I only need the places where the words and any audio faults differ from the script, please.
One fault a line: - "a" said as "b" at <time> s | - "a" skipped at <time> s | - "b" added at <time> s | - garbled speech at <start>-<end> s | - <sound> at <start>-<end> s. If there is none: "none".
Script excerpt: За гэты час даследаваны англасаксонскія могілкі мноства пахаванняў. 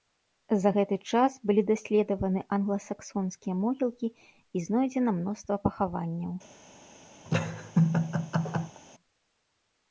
- "былі" added at 1.5 s
- "і знойдзена" added at 4.1 s
- laugh at 7.3-8.8 s